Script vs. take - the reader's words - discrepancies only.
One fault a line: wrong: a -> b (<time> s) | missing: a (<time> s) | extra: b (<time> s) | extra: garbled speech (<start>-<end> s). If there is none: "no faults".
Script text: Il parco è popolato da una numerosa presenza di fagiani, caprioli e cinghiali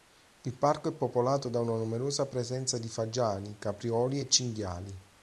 no faults